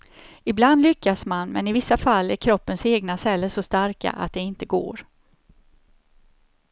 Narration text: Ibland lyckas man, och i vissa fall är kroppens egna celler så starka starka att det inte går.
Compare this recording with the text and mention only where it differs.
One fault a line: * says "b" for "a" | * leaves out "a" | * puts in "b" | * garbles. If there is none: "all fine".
* says "men" for "och"
* leaves out "starka"